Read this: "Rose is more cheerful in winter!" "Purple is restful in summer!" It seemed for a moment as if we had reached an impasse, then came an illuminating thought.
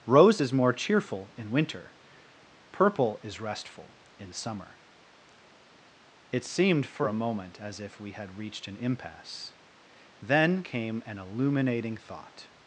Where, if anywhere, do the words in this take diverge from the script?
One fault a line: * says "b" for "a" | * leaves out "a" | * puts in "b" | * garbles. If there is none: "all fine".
all fine